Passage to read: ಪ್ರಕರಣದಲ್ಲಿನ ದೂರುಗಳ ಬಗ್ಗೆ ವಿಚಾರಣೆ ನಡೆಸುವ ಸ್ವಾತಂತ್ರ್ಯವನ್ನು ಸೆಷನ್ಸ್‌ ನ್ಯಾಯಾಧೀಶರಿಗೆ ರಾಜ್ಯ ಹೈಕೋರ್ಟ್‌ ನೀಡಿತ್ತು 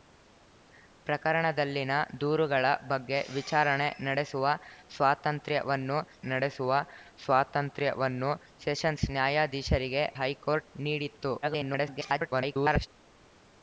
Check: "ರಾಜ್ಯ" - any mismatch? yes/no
yes